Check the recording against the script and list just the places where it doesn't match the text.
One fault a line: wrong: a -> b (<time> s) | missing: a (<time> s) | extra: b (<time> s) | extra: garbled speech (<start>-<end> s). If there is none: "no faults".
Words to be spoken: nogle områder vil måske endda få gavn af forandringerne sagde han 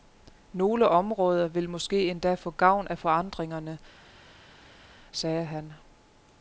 no faults